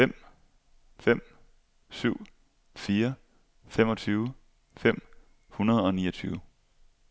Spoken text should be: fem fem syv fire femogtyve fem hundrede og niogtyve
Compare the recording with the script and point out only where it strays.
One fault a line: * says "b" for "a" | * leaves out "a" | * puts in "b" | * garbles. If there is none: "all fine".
all fine